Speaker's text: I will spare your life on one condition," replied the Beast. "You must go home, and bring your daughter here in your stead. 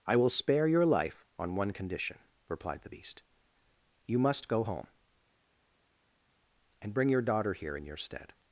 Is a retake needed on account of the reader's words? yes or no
no